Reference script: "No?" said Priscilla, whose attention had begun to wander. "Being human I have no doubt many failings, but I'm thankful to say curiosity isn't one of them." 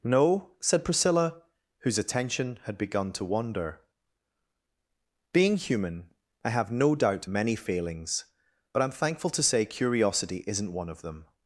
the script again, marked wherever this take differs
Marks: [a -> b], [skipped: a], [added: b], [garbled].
"No?" said Priscilla, whose attention had begun to wander. "Being human I have no doubt many failings, but I'm thankful to say curiosity isn't one of them."